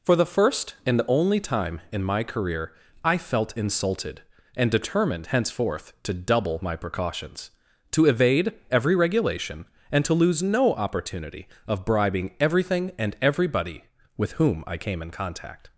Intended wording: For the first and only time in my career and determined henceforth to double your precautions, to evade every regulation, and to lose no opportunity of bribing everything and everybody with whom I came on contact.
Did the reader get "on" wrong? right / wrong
wrong